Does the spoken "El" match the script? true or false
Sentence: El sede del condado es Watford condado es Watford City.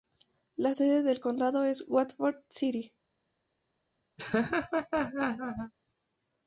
false